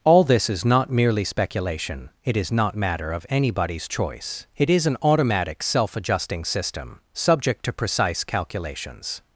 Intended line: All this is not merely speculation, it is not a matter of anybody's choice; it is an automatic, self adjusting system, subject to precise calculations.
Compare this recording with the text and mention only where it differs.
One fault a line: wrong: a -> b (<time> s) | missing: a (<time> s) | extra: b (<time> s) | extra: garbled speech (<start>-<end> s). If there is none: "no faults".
missing: a (2.8 s)